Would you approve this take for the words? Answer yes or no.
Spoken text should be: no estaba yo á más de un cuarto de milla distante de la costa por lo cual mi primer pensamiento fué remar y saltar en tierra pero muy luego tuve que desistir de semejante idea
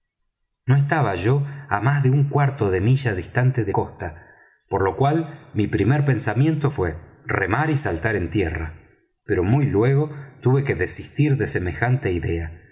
no